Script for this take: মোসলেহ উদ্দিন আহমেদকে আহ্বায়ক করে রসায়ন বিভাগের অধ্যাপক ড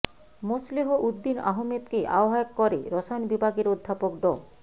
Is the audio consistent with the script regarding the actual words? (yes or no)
yes